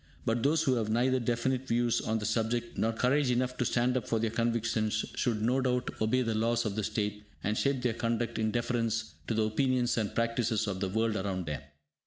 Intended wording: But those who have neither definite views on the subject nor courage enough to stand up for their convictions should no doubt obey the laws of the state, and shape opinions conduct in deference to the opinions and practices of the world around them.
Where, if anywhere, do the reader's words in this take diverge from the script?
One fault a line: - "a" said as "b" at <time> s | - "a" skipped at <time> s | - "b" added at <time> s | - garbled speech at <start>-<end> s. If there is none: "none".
- "opinions" said as "their" at 7.8 s